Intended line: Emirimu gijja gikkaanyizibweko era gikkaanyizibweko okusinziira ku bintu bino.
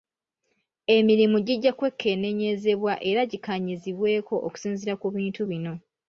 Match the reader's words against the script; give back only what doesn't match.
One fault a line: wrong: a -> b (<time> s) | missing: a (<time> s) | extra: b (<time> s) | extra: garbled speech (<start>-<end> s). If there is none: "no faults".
wrong: gikkaanyizibweko -> kwekenneenyezebwa (1.8 s)